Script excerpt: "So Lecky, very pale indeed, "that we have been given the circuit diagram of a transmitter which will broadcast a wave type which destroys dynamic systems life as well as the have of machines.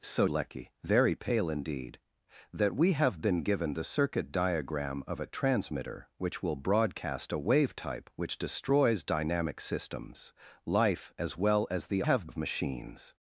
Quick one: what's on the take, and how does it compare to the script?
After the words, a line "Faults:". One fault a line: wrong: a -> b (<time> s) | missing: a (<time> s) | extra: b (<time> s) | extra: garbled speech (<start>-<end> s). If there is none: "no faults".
"So Lecky, very pale indeed, "that we have been given the circuit diagram of a transmitter which will broadcast a wave type which destroys dynamic systems life as well as the have of machines.
Faults:
no faults